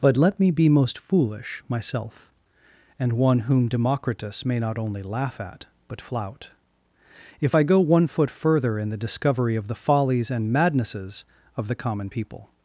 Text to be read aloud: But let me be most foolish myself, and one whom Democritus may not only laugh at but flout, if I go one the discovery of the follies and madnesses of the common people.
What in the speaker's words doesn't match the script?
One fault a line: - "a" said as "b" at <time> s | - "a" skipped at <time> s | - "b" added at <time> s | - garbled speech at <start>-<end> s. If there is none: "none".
- "foot further in" added at 8.1 s